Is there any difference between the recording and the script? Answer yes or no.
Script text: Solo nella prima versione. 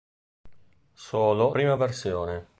yes